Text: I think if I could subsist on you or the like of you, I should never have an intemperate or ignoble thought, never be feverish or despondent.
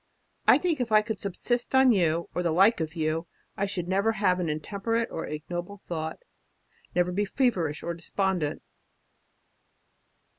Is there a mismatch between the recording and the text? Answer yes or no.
no